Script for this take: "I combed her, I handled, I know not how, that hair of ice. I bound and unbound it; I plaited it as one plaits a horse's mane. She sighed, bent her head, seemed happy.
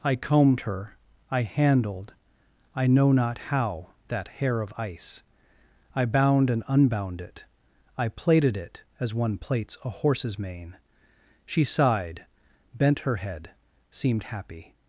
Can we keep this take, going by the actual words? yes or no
yes